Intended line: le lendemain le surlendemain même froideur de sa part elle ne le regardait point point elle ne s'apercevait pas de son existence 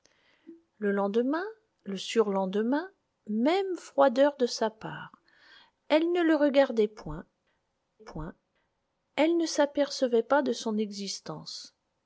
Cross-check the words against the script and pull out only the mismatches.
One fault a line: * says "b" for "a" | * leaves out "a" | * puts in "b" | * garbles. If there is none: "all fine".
all fine